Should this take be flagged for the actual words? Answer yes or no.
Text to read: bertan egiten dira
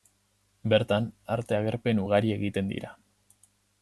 yes